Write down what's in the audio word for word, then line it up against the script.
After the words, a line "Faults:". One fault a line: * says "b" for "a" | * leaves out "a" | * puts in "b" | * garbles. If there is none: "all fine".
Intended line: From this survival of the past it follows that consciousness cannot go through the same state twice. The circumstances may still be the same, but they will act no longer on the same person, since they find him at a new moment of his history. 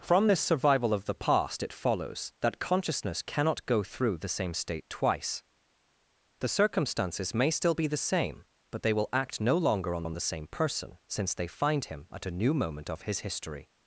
From this survival of the past it follows that consciousness cannot go through the same state twice. The circumstances may still be the same, but they will act no longer on on the same person, since they find him at a new moment of his history.
Faults:
* puts in "on"